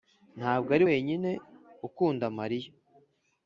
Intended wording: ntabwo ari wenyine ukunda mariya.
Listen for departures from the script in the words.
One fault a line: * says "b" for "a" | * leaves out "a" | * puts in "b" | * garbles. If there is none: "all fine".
all fine